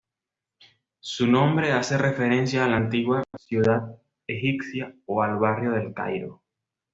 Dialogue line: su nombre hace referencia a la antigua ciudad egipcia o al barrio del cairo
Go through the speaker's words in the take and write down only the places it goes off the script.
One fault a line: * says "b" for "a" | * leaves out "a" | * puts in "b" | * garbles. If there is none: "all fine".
all fine